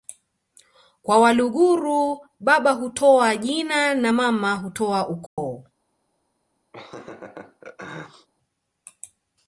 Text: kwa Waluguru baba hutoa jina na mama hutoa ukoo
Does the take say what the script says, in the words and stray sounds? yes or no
no